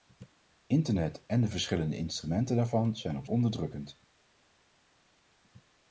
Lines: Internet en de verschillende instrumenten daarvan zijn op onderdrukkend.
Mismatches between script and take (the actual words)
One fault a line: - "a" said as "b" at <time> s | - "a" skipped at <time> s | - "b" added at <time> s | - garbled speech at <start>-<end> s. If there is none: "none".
none